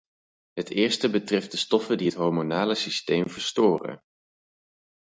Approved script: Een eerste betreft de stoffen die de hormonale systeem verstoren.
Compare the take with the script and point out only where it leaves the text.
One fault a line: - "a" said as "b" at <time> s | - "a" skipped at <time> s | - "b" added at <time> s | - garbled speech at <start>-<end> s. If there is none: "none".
- "Een" said as "Het" at 0.5 s
- "de" said as "het" at 2.0 s